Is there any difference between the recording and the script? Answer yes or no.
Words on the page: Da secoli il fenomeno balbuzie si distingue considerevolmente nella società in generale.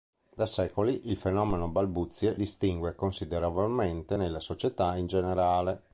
yes